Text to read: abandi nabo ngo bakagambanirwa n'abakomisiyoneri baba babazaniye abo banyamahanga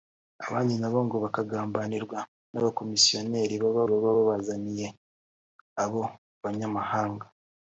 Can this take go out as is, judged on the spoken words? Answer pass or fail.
fail